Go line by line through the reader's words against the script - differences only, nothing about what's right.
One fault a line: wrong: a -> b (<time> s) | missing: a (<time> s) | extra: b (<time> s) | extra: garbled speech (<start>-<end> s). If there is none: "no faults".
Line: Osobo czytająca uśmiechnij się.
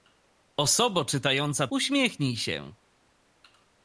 no faults